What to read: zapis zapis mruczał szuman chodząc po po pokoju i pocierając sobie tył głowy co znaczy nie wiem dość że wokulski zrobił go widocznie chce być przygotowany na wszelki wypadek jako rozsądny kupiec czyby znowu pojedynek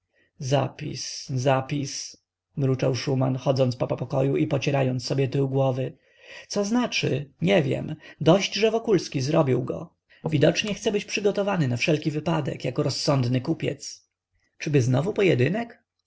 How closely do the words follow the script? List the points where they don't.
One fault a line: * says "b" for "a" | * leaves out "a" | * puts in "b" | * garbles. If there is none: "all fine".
all fine